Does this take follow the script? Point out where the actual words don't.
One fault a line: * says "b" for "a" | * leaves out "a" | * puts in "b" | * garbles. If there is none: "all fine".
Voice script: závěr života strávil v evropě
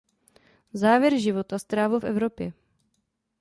all fine